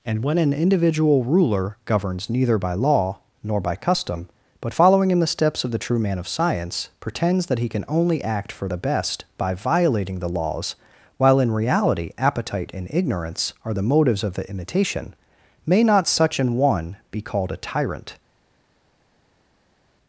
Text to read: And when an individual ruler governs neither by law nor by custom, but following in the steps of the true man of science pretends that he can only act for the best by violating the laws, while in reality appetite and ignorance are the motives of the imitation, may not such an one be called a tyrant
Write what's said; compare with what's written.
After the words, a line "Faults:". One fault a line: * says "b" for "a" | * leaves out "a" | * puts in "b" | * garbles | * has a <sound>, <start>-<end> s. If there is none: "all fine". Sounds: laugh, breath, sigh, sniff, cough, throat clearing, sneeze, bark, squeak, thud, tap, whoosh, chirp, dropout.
And when an individual ruler governs neither by law nor by custom, but following in the steps of the true man of science pretends that he can only act for the best by violating the laws, while in reality appetite and ignorance are the motives of the imitation, may not such an one be called a tyrant
Faults:
all fine